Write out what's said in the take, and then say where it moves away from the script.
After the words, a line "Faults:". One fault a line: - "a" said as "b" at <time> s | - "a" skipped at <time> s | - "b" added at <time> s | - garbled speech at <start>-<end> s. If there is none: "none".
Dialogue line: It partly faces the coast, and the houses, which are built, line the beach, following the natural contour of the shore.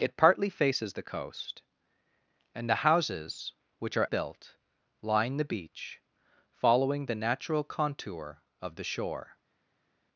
It partly faces the coast, and the houses, which are built, line the beach, following the natural contour of the shore.
Faults:
none